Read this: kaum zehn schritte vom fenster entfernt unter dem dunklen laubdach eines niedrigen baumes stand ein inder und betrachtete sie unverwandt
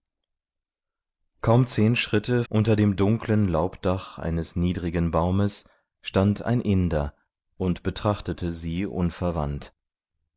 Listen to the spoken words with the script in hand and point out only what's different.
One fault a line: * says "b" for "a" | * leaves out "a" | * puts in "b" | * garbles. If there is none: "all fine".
* leaves out "vom fenster entfernt"